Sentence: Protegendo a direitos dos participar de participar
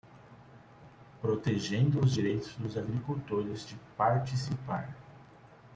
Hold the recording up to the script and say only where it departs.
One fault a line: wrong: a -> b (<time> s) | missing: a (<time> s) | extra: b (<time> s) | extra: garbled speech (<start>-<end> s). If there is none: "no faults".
wrong: a -> os (2.0 s)
wrong: participar -> agricultores (2.8 s)